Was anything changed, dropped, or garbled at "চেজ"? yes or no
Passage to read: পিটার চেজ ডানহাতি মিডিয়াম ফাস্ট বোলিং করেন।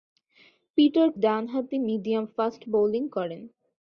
yes